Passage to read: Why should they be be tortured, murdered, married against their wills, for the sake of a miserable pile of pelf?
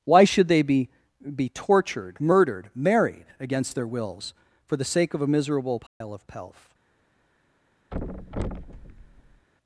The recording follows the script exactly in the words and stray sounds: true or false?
false